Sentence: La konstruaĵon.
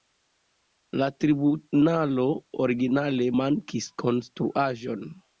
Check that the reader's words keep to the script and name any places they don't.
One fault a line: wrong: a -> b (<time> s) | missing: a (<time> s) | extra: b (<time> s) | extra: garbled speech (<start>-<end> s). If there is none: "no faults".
extra: tribunalo originale mankis (1.2 s)